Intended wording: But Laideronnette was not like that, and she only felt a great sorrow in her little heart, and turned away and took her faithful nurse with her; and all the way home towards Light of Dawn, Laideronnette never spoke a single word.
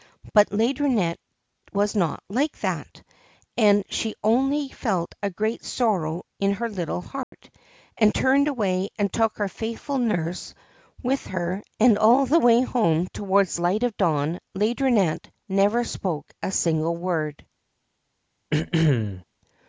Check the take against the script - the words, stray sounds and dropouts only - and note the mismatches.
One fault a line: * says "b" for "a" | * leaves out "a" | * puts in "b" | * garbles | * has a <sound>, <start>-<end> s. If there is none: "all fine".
* has a dropout, 7.2-7.3 s
* has a throat clearing, 18.5-19.2 s